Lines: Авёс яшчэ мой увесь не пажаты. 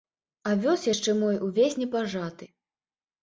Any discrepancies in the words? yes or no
no